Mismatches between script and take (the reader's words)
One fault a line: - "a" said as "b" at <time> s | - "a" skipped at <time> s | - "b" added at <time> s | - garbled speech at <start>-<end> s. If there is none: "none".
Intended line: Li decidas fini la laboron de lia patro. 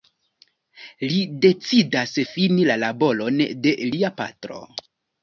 none